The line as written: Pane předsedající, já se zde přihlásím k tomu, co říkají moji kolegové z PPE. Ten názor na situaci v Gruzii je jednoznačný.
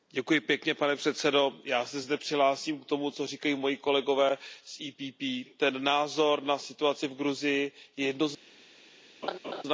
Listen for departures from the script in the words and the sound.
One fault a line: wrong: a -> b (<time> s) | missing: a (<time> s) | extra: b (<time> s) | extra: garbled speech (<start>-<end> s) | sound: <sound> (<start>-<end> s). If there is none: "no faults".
sound: laugh (9.2-9.6 s)